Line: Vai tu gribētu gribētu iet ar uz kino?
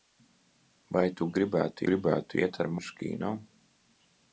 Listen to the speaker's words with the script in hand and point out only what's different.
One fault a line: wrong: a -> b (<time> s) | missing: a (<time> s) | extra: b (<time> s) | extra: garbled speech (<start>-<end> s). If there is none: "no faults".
no faults